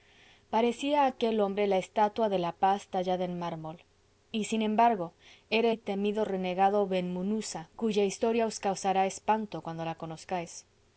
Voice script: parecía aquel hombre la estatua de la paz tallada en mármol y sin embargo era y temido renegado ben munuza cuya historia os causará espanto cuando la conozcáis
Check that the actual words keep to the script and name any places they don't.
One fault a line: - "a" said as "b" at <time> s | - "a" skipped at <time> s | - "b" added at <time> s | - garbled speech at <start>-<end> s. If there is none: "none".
none